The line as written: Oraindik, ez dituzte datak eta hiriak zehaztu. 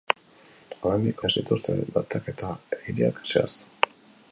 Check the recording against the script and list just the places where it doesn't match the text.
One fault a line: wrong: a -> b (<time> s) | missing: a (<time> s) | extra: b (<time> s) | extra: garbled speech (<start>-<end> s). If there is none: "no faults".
no faults